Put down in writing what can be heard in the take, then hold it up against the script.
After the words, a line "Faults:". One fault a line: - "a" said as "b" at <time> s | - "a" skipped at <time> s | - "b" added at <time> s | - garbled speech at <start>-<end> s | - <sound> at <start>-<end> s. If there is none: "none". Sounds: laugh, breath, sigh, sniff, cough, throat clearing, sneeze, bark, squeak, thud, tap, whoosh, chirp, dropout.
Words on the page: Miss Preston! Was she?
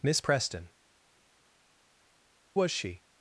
Miss Preston! Was she?
Faults:
none